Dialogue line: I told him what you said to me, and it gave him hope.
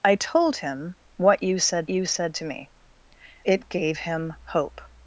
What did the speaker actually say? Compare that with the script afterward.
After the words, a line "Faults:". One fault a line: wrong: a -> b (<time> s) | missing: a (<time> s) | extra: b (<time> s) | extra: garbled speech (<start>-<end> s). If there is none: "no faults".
I told him what you said you said to me, it gave him hope.
Faults:
extra: you said (1.9 s)
missing: and (2.7 s)